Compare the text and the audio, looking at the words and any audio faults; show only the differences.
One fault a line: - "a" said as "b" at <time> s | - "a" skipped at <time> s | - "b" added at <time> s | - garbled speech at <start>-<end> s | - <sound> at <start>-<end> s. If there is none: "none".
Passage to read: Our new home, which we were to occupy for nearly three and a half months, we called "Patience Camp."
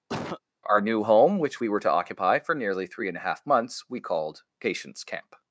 - cough at 0.1-0.4 s